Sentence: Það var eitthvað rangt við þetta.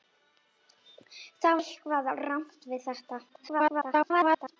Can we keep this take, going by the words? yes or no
no